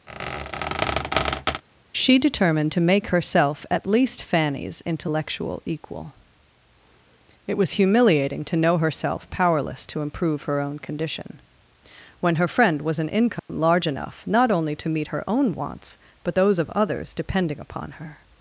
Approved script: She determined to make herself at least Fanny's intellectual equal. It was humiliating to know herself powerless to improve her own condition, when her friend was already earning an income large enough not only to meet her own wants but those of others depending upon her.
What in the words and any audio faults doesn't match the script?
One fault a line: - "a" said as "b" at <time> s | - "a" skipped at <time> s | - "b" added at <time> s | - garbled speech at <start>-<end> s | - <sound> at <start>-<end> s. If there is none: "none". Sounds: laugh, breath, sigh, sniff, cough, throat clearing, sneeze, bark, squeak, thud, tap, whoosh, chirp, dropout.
- squeak at 0.1-1.6 s
- "already earning" skipped at 13.0 s
- dropout at 13.4-13.5 s